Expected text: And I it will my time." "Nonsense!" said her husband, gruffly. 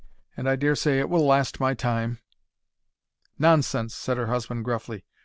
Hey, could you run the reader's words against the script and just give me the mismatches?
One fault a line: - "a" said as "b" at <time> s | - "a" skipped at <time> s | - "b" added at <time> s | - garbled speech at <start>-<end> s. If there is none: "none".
- "dare say" added at 0.6 s
- "last" added at 1.3 s